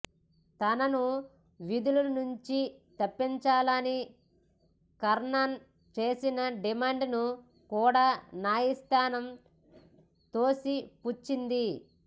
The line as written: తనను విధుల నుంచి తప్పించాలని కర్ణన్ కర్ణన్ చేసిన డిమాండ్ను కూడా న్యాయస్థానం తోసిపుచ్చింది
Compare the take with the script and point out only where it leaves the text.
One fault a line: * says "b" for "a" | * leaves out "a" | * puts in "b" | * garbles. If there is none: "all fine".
* leaves out "కర్ణన్"